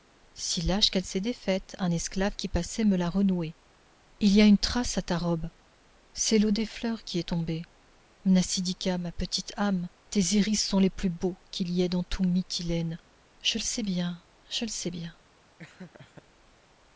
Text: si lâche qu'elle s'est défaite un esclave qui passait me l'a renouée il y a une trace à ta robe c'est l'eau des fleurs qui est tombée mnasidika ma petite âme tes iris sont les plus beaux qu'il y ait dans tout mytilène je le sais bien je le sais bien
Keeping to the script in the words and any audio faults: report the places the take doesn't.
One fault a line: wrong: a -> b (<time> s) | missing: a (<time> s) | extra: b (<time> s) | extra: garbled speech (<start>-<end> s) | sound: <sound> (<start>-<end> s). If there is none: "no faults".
sound: laugh (15.6-16.2 s)